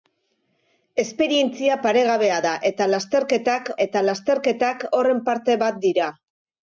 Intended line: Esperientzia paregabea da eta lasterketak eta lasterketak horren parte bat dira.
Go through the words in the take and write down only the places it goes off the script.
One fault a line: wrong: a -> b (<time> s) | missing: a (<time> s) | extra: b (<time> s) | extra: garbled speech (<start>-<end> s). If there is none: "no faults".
no faults